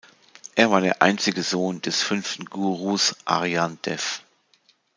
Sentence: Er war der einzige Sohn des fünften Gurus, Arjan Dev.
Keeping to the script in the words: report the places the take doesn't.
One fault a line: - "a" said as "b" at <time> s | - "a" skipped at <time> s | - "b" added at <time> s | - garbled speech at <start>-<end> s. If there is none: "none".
none